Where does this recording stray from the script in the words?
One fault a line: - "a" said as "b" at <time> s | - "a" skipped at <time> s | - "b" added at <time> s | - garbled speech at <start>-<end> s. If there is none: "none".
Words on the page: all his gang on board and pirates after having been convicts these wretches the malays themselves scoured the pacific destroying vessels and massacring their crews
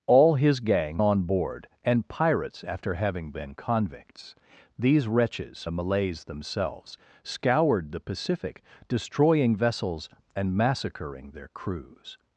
none